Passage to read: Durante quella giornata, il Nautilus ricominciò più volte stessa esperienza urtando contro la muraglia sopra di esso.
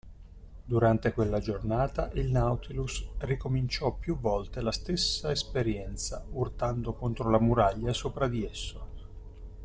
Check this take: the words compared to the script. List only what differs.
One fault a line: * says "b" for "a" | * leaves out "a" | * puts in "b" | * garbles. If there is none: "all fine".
* puts in "la"